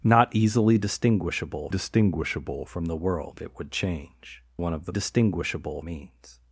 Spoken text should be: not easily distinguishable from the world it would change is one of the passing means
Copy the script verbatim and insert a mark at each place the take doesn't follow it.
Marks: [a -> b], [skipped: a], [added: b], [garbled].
not easily distinguishable [added: distinguishable] from the world it would change [skipped: is] one of the [passing -> distinguishable] means